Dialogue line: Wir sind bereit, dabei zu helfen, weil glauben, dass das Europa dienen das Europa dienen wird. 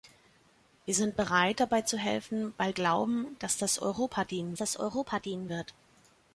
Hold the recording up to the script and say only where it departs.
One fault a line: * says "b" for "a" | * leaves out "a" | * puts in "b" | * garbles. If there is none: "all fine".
all fine